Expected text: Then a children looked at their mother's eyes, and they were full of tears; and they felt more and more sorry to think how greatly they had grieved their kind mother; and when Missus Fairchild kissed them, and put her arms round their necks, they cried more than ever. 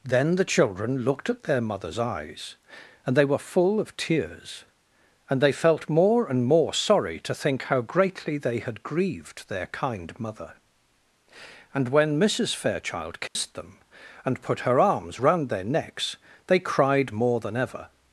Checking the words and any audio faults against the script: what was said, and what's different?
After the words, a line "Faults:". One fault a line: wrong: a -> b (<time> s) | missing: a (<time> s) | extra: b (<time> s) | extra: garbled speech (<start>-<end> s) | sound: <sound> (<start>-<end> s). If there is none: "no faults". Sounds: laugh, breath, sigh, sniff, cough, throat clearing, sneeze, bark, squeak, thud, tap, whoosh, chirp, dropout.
Then the children looked at their mother's eyes, and they were full of tears; and they felt more and more sorry to think how greatly they had grieved their kind mother; and when Missus Fairchild kissed them, and put her arms round their necks, they cried more than ever.
Faults:
wrong: a -> the (0.3 s)
sound: dropout (13.3-13.4 s)